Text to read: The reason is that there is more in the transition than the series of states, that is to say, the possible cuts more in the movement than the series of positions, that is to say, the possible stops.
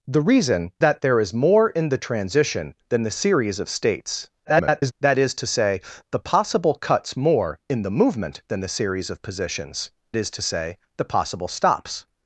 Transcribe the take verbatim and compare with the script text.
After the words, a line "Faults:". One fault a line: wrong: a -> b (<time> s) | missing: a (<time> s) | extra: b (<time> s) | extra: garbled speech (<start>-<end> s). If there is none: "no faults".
The reason that there is more in the transition than the series of states, [garbled] that is to say, the possible cuts more in the movement than the series of positions, is to say, the possible stops.
Faults:
missing: is (0.7 s)
extra: garbled speech (4.4-4.9 s)
missing: that (9.9 s)